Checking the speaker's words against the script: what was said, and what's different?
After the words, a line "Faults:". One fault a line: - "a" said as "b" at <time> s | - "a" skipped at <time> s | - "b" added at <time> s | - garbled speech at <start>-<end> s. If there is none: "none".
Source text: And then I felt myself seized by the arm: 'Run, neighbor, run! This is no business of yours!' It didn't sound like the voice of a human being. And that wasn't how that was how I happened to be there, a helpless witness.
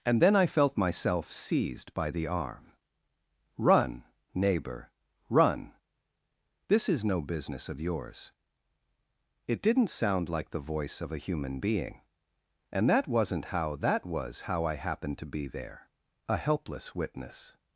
And then I felt myself seized by the arm: 'Run, neighbor, run! This is no business of yours!' It didn't sound like the voice of a human being. And that wasn't how that was how I happened to be there, a helpless witness.
Faults:
none